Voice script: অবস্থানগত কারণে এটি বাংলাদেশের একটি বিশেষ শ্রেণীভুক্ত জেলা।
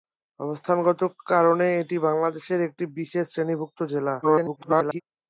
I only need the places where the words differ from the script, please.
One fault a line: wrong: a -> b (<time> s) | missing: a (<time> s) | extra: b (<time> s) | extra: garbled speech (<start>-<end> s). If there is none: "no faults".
extra: garbled speech (4.2-5.0 s)